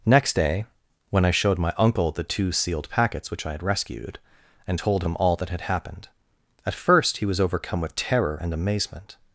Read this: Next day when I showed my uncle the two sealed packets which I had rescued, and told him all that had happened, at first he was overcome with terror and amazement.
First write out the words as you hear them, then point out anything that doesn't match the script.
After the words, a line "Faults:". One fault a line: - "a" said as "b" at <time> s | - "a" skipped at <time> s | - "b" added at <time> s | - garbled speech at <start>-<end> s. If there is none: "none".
Next day when I showed my uncle the two sealed packets which I had rescued, and told him all that had happened, at first he was overcome with terror and amazement.
Faults:
none